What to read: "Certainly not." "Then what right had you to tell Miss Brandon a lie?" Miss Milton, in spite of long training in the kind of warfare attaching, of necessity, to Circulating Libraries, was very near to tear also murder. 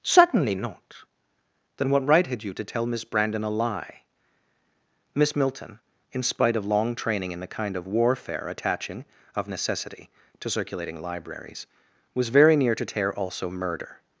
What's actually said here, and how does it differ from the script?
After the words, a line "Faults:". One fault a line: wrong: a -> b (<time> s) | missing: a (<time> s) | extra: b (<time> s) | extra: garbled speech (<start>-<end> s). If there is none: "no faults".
"Certainly not." "Then what right had you to tell Miss Brandon a lie?" Miss Milton, in spite of long training in the kind of warfare attaching, of necessity, to Circulating Libraries, was very near to tear also murder.
Faults:
no faults